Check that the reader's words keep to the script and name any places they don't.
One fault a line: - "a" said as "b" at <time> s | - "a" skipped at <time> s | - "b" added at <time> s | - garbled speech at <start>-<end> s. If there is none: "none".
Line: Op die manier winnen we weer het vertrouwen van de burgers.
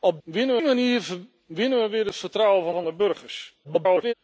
- "die" said as "winnen" at 0.2 s
- "van" added at 2.7 s
- garbled speech at 3.6-4.1 s